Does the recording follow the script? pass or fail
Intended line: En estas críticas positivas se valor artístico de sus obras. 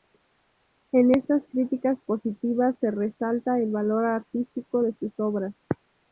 fail